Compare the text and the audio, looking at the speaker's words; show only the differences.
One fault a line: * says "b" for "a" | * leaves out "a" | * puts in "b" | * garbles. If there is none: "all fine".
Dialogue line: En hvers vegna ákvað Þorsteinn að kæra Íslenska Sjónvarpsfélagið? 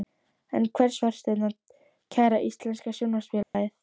* leaves out "vegna ákvað"